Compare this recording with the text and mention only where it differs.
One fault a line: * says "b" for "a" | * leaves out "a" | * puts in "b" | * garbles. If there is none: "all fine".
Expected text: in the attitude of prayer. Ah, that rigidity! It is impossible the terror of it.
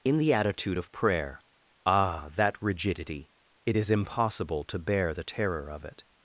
* puts in "to bear"